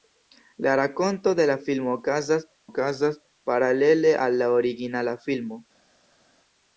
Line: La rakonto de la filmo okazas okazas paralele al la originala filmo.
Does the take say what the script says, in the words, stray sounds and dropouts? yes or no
yes